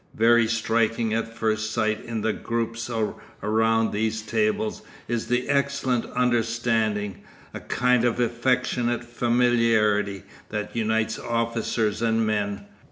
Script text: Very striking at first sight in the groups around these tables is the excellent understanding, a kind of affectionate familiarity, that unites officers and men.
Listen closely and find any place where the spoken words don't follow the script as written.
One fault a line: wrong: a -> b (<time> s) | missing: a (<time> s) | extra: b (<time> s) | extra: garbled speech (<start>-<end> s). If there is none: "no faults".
no faults